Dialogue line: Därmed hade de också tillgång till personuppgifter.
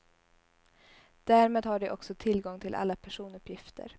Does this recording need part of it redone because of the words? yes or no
yes